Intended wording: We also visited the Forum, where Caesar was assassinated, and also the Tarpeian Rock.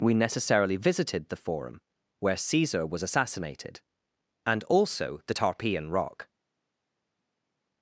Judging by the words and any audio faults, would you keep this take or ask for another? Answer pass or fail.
fail